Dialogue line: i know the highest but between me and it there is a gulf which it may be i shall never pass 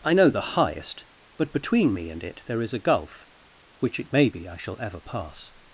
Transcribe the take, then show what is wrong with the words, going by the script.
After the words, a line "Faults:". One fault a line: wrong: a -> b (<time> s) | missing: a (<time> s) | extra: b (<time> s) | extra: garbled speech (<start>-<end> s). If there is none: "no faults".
i know the highest but between me and it there is a gulf which it may be i shall ever pass
Faults:
wrong: never -> ever (4.8 s)